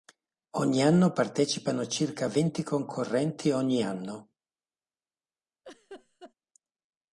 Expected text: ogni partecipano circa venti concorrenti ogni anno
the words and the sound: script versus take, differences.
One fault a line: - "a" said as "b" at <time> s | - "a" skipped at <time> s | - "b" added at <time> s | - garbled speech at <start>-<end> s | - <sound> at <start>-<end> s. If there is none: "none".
- "anno" added at 0.8 s
- laugh at 5.6-6.3 s